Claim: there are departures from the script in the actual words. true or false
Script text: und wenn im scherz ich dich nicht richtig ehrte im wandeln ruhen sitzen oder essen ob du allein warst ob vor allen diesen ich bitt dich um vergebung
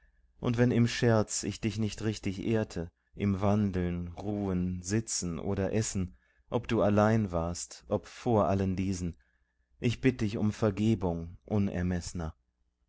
false